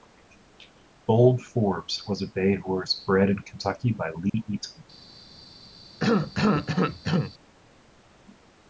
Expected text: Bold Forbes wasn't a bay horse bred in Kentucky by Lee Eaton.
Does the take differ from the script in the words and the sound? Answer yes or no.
yes